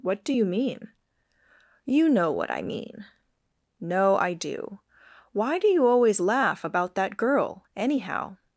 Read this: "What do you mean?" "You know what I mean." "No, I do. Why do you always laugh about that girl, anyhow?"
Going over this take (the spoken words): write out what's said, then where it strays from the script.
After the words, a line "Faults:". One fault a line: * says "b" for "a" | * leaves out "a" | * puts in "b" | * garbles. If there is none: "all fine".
"What do you mean?" "You know what I mean." "No, I do. Why do you always laugh about that girl, anyhow?"
Faults:
all fine